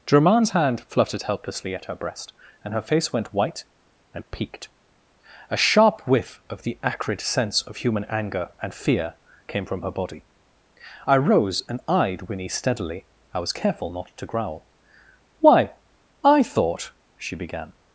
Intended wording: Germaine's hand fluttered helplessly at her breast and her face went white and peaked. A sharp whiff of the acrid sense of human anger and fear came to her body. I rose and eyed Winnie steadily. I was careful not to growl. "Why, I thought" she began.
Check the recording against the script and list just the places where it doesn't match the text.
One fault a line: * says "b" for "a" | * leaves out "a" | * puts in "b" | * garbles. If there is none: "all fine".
* says "from" for "to"